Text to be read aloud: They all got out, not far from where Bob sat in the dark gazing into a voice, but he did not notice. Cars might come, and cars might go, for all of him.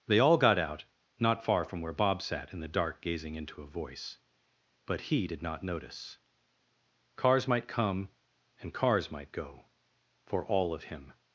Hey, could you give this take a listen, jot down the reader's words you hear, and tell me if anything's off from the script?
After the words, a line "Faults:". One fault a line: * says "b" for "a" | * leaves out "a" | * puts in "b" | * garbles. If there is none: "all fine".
They all got out, not far from where Bob sat in the dark gazing into a voice, but he did not notice. Cars might come, and cars might go, for all of him.
Faults:
all fine